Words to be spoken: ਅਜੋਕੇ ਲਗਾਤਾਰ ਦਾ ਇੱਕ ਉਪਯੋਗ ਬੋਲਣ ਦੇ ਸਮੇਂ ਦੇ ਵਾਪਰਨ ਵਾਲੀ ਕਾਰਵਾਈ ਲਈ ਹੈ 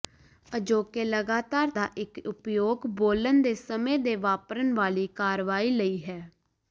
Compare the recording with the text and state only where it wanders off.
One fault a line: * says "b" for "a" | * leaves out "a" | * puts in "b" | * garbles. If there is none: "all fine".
all fine